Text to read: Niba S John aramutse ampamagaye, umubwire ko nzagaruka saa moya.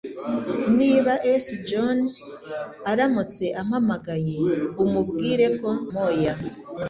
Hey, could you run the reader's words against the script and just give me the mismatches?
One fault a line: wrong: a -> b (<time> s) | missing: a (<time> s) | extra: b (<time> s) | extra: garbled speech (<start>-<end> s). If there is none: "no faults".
missing: nzagaruka saa (5.7 s)